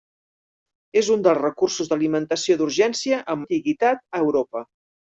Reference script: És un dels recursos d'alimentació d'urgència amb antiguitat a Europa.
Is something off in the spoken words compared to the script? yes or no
no